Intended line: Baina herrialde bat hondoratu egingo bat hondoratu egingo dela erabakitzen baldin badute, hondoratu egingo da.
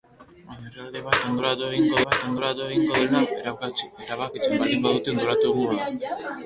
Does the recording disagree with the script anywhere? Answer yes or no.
no